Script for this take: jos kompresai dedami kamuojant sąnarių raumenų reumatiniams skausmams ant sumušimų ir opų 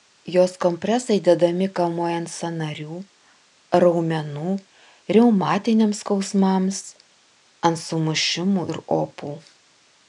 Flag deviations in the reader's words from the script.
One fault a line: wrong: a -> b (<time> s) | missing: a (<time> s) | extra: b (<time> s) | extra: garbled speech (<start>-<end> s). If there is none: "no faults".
no faults